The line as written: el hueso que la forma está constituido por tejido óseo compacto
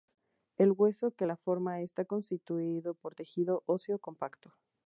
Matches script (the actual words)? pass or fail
pass